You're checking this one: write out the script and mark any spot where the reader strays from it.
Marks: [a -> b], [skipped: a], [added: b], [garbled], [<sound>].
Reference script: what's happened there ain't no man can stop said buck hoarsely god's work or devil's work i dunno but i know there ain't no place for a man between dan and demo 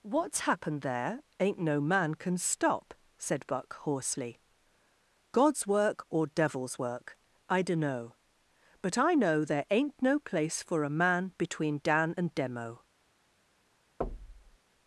what's happened there ain't no man can stop said buck hoarsely god's work or devil's work i dunno but i know there ain't no place for a man between dan and demo [thud]